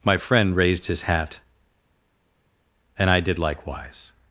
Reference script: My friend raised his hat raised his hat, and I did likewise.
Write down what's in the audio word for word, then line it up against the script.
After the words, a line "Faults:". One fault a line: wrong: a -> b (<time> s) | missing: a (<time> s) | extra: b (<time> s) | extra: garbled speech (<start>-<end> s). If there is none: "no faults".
My friend raised his hat, and I did likewise.
Faults:
missing: raised his hat (1.4 s)